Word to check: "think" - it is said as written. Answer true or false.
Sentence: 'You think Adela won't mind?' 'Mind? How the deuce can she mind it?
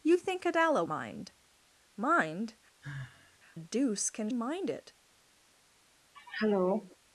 true